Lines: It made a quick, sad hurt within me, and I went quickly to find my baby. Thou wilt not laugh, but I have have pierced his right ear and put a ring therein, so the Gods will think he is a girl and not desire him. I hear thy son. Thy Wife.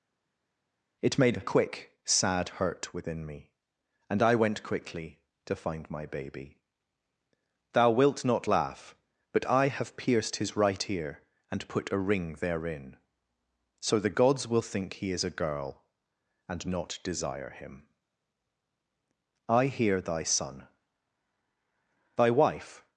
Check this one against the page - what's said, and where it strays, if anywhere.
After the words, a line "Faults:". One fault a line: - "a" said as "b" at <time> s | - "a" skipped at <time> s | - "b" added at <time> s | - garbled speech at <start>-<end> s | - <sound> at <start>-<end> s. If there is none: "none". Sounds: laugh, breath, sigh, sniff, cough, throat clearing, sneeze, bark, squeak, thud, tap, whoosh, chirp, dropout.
It made a quick, sad hurt within me, and I went quickly to find my baby. Thou wilt not laugh, but I have pierced his right ear and put a ring therein, so the Gods will think he is a girl and not desire him. I hear thy son. Thy Wife.
Faults:
- "have" skipped at 10.0 s